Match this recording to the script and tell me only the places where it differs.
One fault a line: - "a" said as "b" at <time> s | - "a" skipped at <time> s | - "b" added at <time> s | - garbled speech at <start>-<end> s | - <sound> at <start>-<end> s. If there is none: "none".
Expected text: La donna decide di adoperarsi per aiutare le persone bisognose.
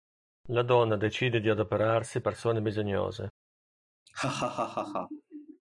- "per aiutare le" skipped at 2.2 s
- laugh at 4.1-5.6 s